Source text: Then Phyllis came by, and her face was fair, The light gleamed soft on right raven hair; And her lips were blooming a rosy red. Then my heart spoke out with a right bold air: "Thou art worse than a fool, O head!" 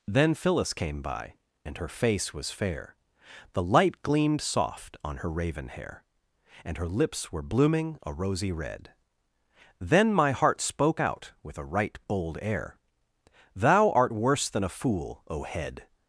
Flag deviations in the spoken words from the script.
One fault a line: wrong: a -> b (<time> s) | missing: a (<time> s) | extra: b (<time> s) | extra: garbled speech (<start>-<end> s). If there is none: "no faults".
wrong: right -> her (5.2 s)